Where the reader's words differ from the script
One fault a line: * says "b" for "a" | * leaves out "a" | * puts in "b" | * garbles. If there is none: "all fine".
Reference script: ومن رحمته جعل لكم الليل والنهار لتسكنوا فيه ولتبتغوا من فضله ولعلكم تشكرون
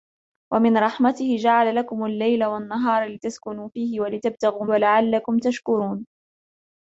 * leaves out "من فضله"